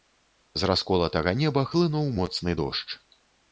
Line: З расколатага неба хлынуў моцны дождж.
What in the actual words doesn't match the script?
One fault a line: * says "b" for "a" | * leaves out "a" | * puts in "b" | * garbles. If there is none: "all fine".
all fine